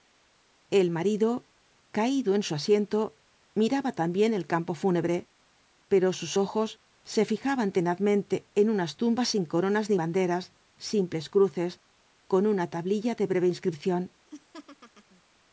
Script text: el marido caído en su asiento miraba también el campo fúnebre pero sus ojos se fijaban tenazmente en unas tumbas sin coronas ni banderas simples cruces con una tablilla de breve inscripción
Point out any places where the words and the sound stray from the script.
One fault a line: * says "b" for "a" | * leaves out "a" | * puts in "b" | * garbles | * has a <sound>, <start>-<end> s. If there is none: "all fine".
* has a laugh, 14.3-15.2 s